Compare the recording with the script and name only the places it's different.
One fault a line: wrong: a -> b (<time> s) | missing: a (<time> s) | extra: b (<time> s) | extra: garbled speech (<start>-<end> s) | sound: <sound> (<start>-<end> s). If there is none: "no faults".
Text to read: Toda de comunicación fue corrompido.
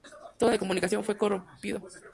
no faults